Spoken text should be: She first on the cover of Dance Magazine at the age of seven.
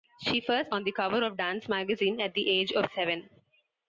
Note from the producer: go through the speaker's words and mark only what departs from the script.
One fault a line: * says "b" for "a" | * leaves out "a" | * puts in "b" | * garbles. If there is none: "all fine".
all fine